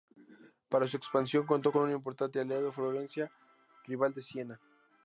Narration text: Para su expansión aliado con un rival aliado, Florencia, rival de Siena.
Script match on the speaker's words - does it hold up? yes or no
no